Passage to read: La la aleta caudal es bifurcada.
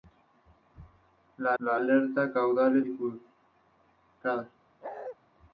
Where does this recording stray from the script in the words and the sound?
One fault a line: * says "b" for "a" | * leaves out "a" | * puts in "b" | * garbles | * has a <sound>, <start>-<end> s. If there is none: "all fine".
* has a bark, 4.8-5.2 s